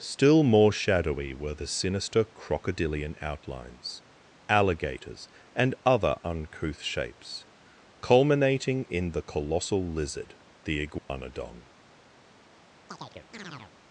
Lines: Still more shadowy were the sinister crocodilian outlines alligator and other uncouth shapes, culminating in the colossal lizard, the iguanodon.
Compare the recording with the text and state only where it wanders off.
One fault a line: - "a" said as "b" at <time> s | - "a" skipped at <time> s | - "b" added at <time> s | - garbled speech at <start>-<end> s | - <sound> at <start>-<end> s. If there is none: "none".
- "alligator" said as "alligators" at 4.5 s
- dropout at 11.0-11.1 s
- chirp at 12.9-13.7 s